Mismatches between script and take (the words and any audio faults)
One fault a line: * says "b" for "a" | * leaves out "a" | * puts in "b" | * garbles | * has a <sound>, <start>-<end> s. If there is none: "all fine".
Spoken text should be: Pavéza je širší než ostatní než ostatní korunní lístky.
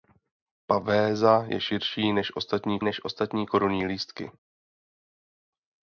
all fine